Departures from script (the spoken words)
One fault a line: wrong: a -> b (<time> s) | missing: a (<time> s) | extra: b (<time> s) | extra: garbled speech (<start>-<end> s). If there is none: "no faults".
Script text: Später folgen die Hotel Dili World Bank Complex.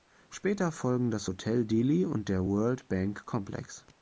wrong: die -> das (1.1 s)
extra: und der (2.0 s)